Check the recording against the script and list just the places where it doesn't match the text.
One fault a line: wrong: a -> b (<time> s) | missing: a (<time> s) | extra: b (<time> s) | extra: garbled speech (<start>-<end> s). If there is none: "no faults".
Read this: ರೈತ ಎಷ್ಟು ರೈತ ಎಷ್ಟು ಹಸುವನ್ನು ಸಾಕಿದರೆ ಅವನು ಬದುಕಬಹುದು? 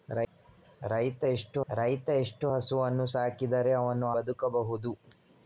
no faults